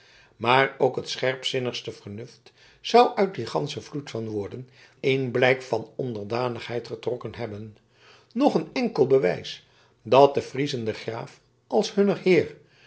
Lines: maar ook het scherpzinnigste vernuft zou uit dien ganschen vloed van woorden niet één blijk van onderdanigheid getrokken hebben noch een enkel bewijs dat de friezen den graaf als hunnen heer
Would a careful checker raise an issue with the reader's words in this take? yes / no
yes